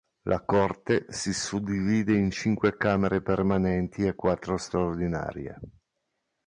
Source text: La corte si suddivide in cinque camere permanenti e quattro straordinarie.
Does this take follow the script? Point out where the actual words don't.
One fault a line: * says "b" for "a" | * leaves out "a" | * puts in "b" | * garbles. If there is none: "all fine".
all fine